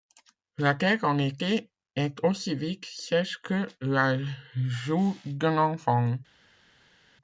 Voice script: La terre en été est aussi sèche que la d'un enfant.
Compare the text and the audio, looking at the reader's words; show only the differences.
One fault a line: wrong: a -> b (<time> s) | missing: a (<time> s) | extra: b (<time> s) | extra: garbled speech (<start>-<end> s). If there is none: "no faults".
extra: vite (2.5 s)
extra: joue (4.5 s)